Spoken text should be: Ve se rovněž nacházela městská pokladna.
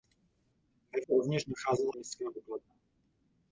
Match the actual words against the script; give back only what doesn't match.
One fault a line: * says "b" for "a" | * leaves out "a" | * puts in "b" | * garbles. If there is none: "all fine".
all fine